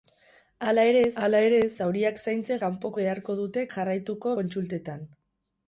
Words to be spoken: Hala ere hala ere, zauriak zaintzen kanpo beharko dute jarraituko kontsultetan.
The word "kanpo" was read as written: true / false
true